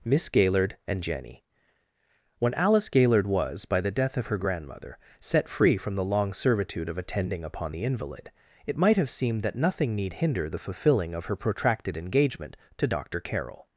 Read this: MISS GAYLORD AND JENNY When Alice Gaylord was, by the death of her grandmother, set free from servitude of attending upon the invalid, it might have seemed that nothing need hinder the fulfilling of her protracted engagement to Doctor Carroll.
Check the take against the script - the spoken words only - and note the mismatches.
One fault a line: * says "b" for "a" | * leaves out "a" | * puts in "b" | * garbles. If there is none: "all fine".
* puts in "the long"